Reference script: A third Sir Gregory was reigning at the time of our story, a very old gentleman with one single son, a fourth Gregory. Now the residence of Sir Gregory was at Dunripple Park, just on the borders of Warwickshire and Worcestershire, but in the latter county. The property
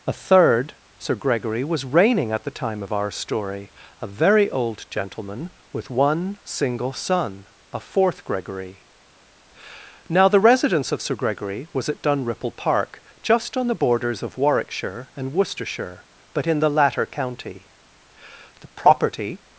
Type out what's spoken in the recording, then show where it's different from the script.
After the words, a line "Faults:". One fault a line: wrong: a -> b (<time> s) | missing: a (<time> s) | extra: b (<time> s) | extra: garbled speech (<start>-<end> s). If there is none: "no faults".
A third Sir Gregory was reigning at the time of our story, a very old gentleman with one single son, a fourth Gregory. Now the residence of Sir Gregory was at Dunripple Park, just on the borders of Warwickshire and Worcestershire, but in the latter county. The property
Faults:
no faults